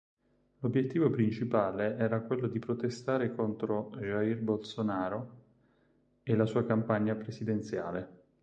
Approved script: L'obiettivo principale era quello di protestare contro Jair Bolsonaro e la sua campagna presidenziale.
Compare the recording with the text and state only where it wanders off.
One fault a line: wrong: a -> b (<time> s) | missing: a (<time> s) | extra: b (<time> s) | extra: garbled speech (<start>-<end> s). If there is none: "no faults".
no faults